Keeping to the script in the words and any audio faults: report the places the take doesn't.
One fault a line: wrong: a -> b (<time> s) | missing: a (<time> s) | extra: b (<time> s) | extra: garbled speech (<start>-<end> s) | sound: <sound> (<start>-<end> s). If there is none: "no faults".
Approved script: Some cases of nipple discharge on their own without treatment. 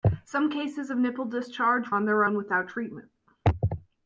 no faults